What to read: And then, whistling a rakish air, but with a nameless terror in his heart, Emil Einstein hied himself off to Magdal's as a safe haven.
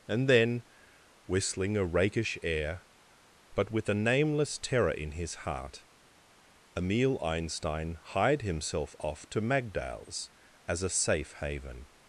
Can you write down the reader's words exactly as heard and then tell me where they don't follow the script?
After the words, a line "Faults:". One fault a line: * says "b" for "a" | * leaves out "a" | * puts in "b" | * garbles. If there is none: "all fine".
And then, whistling a rakish air, but with a nameless terror in his heart, Emil Einstein hied himself off to Magdal's as a safe haven.
Faults:
all fine